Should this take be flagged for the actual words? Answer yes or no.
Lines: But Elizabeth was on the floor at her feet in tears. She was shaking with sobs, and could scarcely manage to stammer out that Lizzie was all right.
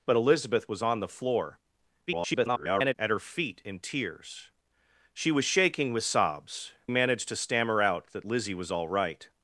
yes